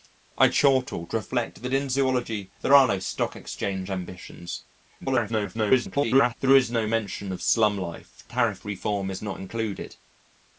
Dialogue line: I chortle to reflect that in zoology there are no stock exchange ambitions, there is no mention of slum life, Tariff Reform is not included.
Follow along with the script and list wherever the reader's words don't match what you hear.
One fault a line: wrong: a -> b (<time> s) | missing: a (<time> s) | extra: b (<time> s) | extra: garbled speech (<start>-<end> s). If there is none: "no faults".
extra: garbled speech (5.0-6.4 s)